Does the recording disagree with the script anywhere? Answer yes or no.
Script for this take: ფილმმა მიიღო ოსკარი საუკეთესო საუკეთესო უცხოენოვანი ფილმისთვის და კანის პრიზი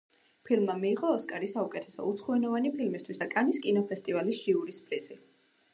yes